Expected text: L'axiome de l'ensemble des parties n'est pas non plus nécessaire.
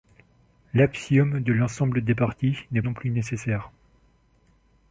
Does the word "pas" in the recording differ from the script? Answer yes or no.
yes